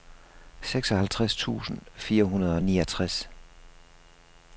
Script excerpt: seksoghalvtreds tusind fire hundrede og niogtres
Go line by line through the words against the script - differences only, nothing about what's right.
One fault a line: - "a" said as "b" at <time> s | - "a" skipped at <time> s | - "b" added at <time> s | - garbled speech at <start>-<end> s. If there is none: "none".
none